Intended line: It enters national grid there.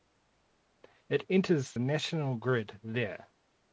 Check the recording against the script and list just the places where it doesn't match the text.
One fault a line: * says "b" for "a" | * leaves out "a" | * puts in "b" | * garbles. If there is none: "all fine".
all fine